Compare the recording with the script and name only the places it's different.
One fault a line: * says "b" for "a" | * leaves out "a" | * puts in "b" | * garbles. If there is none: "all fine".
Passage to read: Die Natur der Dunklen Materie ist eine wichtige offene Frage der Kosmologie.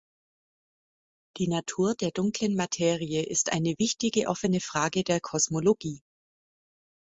all fine